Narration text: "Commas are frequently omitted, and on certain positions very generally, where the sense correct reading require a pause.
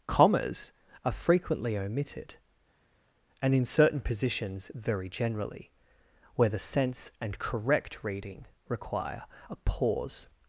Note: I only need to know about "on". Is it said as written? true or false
false